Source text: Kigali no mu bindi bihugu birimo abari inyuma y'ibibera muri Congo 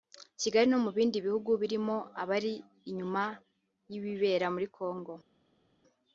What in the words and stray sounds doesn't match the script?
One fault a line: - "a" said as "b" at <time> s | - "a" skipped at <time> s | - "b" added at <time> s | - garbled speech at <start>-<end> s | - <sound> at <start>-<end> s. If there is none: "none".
none